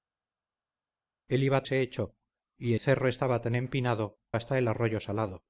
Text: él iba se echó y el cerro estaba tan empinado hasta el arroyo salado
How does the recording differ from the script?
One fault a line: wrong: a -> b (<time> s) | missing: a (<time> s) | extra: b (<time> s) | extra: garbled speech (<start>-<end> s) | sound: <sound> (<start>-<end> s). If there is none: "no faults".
no faults